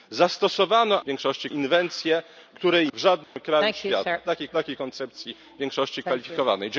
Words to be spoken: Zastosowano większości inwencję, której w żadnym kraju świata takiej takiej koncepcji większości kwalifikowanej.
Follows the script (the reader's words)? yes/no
yes